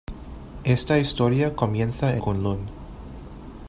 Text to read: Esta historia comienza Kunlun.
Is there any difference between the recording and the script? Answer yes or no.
no